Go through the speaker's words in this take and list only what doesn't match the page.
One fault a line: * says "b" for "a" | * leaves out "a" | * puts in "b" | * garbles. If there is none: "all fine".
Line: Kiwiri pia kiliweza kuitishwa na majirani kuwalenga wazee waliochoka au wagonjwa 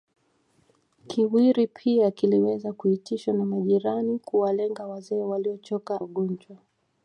* leaves out "au"